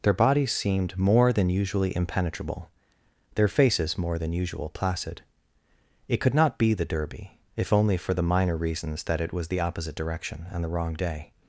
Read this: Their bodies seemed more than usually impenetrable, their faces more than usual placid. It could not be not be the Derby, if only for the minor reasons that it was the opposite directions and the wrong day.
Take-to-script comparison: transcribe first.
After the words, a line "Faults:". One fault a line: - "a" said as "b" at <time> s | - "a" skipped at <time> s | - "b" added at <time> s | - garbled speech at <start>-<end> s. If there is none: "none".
Their bodies seemed more than usually impenetrable, their faces more than usual placid. It could not be the Derby, if only for the minor reasons that it was the opposite direction and the wrong day.
Faults:
- "not be" skipped at 6.7 s
- "directions" said as "direction" at 10.0 s